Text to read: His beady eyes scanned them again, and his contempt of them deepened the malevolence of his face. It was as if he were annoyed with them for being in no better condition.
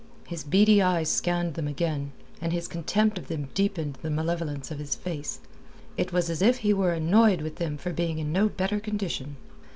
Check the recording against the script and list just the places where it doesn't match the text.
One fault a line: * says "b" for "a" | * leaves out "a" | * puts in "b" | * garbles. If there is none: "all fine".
all fine